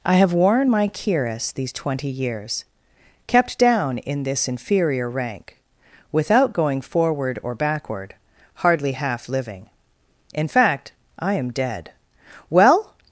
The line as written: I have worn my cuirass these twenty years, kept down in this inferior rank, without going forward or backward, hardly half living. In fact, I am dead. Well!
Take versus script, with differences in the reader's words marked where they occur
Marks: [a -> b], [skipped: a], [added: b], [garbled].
I have worn my cuirass these twenty years, kept down in this inferior rank, without going forward or backward, hardly half living. In fact, I am dead. Well!